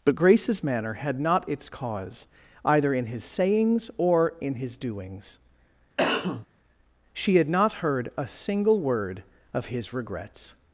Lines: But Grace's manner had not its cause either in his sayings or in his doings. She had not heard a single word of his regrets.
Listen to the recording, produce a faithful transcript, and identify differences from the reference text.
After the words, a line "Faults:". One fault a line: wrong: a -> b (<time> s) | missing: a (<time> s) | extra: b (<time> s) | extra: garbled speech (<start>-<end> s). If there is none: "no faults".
But Grace's manner had not its cause either in his sayings or in his doings. She had not heard a single word of his regrets.
Faults:
no faults